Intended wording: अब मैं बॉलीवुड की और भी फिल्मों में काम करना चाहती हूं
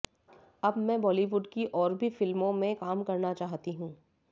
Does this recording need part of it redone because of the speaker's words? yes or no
no